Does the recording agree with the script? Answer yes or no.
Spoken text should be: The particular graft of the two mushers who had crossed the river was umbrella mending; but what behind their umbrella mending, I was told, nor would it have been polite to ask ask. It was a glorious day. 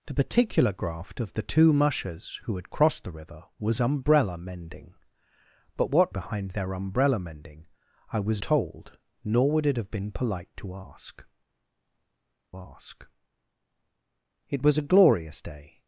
yes